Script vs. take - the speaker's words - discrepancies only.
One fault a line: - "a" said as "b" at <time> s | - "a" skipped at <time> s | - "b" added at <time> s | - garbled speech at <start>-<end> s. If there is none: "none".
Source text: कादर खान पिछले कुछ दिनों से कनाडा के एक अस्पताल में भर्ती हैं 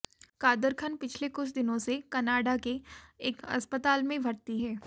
none